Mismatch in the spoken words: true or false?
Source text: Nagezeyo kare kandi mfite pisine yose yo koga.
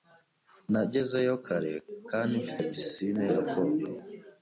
true